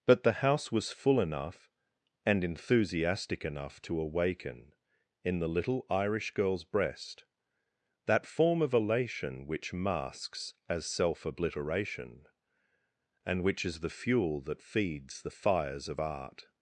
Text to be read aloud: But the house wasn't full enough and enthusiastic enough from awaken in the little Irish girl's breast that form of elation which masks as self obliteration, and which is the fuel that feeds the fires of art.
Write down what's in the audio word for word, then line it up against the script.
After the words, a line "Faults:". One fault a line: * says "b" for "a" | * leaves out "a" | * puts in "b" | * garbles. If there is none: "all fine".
But the house was full enough and enthusiastic enough to awaken in the little Irish girl's breast that form of elation which masks as self obliteration, and which is the fuel that feeds the fires of art.
Faults:
* says "was" for "wasn't"
* says "to" for "from"